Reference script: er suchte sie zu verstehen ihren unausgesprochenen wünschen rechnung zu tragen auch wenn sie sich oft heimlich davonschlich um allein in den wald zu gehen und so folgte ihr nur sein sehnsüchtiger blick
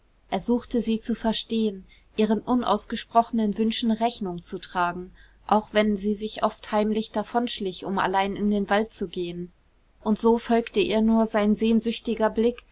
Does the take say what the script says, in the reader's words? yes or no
yes